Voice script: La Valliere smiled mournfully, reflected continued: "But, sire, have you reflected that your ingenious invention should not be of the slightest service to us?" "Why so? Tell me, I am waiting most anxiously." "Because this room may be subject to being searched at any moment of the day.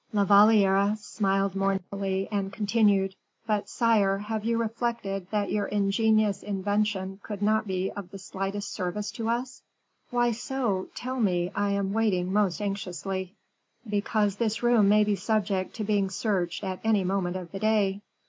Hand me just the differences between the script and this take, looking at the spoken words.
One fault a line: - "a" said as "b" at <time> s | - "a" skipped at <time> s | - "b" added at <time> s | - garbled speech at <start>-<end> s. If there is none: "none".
- "reflected" said as "and" at 2.3 s
- "should" said as "could" at 7.2 s